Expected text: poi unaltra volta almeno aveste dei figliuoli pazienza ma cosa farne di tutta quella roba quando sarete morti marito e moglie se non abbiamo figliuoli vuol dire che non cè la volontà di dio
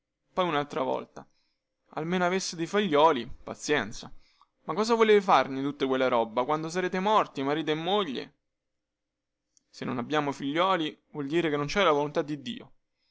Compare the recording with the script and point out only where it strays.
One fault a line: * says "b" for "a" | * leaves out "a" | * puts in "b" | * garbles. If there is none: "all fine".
* puts in "volete"